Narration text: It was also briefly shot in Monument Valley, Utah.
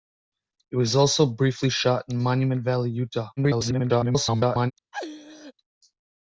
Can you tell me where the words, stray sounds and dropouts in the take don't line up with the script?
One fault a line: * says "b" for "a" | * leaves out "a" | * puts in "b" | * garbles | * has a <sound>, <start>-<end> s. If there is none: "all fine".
* garbles
* has a laugh, 4.9-5.5 s